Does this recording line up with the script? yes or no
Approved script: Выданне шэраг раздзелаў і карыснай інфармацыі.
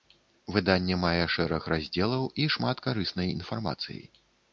no